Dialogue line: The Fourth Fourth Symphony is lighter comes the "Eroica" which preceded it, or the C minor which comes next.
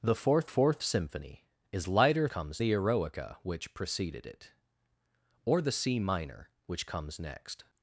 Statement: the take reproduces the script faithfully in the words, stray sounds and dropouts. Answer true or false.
true